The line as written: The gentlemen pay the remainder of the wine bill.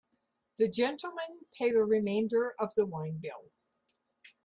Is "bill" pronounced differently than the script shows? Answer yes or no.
no